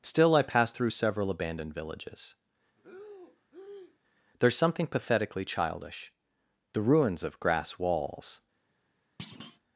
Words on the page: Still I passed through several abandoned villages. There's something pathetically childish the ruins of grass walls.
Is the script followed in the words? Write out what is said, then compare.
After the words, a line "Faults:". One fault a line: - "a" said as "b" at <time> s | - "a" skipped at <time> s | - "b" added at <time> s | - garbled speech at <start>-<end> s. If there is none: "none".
Still I passed through several abandoned villages. There's something pathetically childish the ruins of grass walls.
Faults:
none